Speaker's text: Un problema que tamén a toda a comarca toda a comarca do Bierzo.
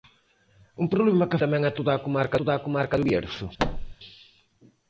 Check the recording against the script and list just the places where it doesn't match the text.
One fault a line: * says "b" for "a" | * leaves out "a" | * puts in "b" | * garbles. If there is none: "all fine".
all fine